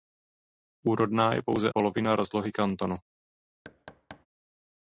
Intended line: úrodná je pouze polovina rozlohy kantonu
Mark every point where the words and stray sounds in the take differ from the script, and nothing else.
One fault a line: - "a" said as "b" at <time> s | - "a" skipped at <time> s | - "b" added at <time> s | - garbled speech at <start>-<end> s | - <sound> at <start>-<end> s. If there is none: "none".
- thud at 3.6-4.3 s